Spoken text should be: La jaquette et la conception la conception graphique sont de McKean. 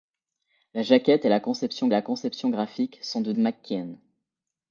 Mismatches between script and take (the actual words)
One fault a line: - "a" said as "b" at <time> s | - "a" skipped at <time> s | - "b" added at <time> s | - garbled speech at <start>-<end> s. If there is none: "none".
none